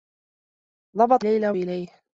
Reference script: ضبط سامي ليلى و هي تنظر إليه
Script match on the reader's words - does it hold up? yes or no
no